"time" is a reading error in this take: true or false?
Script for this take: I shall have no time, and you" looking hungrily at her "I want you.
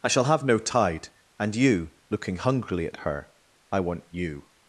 true